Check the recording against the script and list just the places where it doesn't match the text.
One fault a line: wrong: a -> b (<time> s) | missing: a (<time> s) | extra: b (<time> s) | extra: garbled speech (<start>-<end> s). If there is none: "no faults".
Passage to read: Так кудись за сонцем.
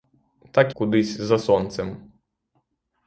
no faults